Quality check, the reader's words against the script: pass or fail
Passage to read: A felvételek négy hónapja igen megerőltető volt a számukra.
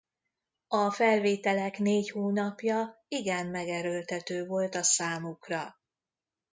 pass